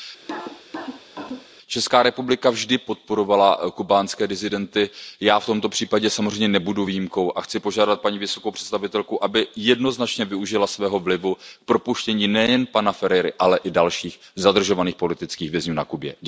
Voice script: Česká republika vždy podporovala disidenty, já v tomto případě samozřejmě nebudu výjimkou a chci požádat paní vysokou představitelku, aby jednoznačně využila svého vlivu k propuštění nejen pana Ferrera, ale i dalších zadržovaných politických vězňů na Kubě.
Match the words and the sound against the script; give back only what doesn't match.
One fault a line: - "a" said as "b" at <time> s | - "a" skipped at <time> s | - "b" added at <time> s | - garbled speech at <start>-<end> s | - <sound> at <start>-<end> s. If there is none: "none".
- cough at 0.2-1.5 s
- "kubánské" added at 3.7 s